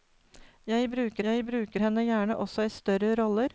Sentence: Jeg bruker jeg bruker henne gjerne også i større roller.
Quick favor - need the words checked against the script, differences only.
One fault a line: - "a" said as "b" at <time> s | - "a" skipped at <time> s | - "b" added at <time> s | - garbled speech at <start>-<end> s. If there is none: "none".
none